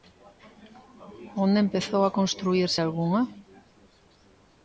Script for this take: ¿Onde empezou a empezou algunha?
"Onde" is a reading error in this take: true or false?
false